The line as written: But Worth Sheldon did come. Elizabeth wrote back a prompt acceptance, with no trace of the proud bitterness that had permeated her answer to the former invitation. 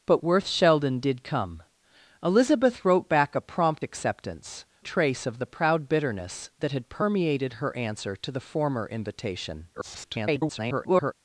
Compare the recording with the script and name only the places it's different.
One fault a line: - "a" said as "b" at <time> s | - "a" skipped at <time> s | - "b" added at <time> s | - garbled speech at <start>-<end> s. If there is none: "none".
- "with no" skipped at 4.6 s
- garbled speech at 9.7-11.1 s